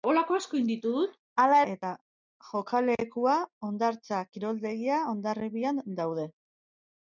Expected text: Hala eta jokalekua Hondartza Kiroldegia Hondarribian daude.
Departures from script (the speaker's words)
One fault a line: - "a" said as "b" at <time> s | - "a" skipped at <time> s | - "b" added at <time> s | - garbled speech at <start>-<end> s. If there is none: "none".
none